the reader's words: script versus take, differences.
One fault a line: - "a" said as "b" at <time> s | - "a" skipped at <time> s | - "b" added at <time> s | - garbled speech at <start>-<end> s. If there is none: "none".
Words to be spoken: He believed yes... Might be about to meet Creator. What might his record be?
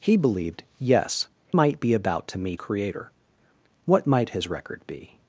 none